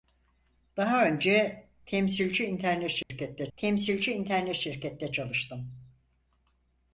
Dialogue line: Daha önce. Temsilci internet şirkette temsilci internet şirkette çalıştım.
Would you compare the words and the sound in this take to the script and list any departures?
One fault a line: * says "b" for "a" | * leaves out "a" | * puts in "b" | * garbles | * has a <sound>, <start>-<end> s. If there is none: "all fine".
* has a dropout, 3.0-3.1 s